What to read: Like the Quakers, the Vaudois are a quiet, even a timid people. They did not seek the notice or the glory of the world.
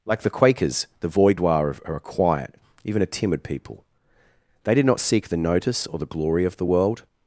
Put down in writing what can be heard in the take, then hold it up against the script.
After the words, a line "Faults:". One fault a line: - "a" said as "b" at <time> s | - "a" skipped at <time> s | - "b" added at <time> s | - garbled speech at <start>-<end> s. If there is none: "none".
Like the Quakers, the Vaudois are a quiet, even a timid people. They did not seek the notice or the glory of the world.
Faults:
none